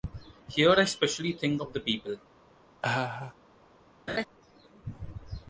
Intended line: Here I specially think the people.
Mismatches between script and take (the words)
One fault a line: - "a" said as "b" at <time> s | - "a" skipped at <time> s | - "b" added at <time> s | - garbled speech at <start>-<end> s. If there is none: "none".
- "of" added at 1.6 s